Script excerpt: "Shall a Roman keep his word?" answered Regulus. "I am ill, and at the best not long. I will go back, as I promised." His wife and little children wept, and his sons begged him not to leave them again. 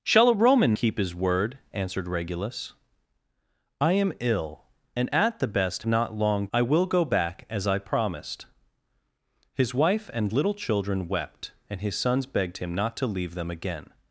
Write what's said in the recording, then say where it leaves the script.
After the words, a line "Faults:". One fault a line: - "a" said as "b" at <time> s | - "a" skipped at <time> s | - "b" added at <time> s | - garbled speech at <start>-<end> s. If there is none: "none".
"Shall a Roman keep his word?" answered Regulus. "I am ill, and at the best not long. I will go back, as I promised." His wife and little children wept, and his sons begged him not to leave them again.
Faults:
none